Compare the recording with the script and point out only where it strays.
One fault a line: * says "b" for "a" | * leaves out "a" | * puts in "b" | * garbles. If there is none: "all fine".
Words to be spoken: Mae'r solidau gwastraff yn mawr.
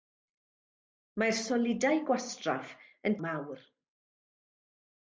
all fine